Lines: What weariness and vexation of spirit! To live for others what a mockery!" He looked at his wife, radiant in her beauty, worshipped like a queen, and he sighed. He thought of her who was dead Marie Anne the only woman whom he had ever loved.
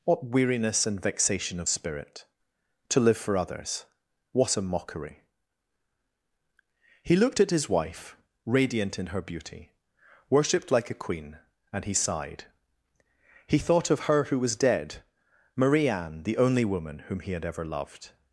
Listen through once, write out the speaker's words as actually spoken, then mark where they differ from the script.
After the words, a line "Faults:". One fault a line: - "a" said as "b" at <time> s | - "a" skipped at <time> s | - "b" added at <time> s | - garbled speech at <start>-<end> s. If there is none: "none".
What weariness and vexation of spirit! To live for others what a mockery!" He looked at his wife, radiant in her beauty, worshipped like a queen, and he sighed. He thought of her who was dead Marie Anne the only woman whom he had ever loved.
Faults:
none